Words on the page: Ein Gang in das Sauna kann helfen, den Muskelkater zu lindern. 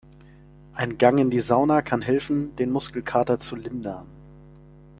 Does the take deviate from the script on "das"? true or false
true